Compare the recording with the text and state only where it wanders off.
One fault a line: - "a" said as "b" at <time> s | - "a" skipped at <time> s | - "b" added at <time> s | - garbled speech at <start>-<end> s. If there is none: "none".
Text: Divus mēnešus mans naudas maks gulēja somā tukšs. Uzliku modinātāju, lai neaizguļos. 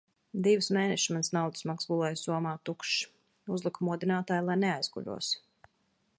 none